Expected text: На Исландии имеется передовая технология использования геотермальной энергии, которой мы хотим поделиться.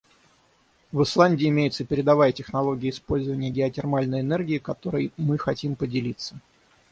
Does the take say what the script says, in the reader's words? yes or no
no